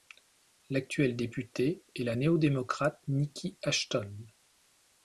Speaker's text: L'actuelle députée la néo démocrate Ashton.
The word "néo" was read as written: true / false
true